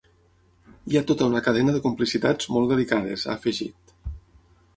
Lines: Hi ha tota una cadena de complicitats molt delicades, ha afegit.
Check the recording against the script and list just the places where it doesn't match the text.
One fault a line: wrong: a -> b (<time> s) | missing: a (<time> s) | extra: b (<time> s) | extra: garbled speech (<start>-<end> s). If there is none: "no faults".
no faults